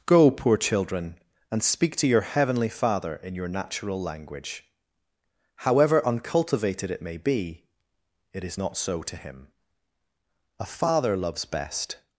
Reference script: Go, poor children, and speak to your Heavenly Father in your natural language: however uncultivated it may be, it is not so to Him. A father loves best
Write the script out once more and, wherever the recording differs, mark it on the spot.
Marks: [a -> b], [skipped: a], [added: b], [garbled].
Go, poor children, and speak to your Heavenly Father in your natural language: however uncultivated it may be, it is not so to Him. A father loves best